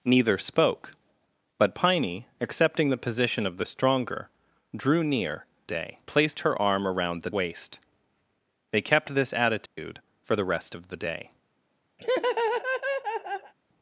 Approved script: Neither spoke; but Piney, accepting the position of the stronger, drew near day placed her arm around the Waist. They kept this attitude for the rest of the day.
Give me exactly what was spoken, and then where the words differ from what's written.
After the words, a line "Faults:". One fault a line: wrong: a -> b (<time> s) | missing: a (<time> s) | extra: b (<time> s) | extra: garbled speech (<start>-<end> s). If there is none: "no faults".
Neither spoke; but Piney, accepting the position of the stronger, drew near day placed her arm around the Waist. They kept this attitude for the rest of the day.
Faults:
no faults